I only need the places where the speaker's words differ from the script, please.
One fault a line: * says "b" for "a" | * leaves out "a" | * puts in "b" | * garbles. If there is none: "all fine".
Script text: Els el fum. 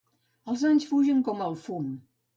* puts in "anys fugen com"